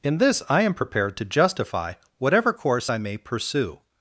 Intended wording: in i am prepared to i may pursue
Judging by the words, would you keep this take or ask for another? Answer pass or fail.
fail